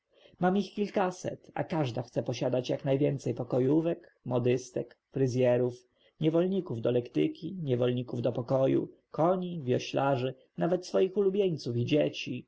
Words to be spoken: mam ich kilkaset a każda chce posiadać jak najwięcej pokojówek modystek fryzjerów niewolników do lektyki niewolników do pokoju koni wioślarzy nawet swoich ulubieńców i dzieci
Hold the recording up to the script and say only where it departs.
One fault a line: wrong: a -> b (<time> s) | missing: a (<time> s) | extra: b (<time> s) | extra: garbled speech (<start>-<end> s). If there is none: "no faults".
no faults